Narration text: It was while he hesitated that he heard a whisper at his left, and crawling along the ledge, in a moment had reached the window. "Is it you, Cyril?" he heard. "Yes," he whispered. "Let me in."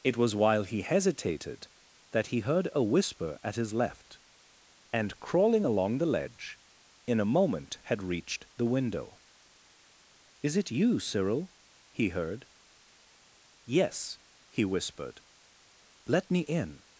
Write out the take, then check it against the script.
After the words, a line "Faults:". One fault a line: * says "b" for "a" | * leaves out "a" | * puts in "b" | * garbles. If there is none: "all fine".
It was while he hesitated that he heard a whisper at his left, and crawling along the ledge, in a moment had reached the window. "Is it you, Cyril?" he heard. "Yes," he whispered. "Let me in."
Faults:
all fine